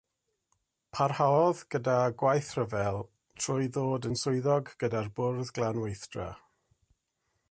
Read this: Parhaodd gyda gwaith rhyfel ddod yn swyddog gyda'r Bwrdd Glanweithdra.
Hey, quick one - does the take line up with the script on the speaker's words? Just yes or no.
no